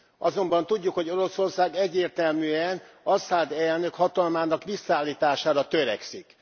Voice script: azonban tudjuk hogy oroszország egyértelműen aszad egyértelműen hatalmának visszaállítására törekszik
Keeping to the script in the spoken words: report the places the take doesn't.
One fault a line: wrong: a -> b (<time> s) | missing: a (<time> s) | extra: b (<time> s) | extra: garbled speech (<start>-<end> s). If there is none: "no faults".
wrong: egyértelműen -> elnök (3.5 s)